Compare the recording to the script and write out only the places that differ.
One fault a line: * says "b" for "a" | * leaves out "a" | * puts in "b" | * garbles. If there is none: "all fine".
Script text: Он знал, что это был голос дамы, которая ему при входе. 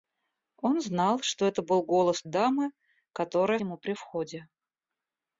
all fine